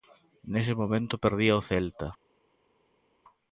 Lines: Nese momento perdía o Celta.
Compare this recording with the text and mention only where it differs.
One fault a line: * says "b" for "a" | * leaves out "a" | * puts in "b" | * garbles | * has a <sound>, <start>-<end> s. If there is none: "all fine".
all fine